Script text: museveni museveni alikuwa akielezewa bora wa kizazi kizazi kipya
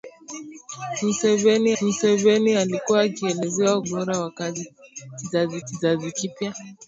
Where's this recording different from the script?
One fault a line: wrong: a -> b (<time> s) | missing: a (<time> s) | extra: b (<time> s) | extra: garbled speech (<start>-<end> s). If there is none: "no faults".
no faults